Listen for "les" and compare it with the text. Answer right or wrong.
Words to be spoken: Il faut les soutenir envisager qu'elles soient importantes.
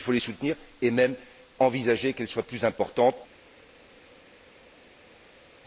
right